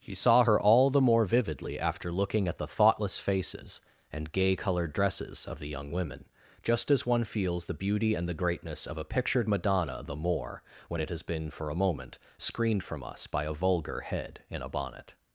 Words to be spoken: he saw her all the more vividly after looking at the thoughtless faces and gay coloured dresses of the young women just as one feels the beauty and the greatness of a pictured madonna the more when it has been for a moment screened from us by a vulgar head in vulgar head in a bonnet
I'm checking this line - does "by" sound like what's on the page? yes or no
yes